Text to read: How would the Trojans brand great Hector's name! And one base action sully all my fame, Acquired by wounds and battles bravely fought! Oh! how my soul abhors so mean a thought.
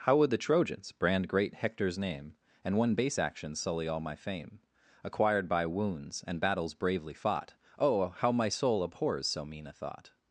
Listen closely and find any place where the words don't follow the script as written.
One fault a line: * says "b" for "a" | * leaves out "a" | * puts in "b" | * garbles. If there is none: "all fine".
all fine